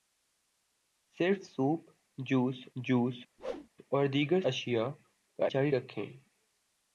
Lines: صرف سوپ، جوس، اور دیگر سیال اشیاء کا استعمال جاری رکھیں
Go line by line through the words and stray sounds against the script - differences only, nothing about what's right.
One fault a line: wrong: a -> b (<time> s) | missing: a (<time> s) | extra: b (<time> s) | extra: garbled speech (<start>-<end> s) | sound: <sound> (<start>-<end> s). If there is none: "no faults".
extra: جوس (2.7 s)
sound: whoosh (3.4-3.7 s)
missing: سیال (4.4 s)
missing: استعمال (5.5 s)